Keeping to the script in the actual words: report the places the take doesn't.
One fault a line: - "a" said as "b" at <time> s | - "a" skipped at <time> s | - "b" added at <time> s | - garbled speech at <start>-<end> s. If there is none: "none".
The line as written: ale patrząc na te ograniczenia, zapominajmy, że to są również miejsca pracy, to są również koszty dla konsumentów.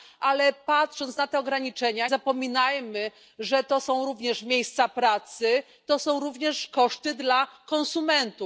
none